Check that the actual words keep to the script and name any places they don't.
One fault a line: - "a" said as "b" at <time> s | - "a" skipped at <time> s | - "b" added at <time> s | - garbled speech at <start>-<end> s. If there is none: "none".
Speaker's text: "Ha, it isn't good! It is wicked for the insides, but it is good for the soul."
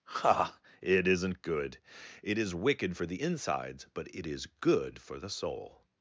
none